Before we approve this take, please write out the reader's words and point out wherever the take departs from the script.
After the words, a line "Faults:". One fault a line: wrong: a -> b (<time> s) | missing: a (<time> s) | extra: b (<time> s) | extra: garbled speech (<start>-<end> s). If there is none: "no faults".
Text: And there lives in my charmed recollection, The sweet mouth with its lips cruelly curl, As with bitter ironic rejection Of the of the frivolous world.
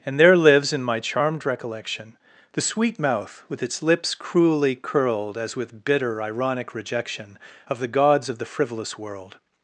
And there lives in my charmed recollection, The sweet mouth with its lips cruelly curled, As with bitter ironic rejection Of the gods of the frivolous world.
Faults:
wrong: curl -> curled (4.8 s)
extra: gods (7.9 s)